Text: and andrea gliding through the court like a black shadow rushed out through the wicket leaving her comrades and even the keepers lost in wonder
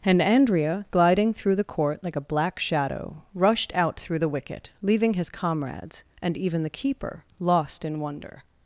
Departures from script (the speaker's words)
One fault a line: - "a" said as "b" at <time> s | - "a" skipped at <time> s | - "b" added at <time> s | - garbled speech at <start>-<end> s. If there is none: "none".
- "her" said as "his" at 5.1 s
- "keepers" said as "keeper" at 6.7 s